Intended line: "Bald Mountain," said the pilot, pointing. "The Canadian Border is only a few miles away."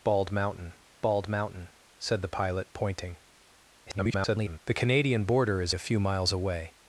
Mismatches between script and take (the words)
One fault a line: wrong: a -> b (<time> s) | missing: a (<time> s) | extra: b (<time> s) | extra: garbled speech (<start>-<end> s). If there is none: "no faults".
extra: bald Mountain (1.0 s)
extra: garbled speech (3.9-4.6 s)
missing: only (5.7 s)